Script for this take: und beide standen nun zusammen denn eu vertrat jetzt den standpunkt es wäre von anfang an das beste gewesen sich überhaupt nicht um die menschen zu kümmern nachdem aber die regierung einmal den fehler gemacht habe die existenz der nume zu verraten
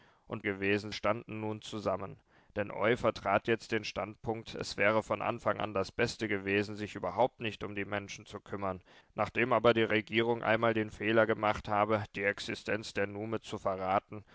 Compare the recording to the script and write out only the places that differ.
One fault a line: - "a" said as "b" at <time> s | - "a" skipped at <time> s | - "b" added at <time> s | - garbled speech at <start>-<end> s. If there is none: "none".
- "beide" said as "gewesen" at 0.4 s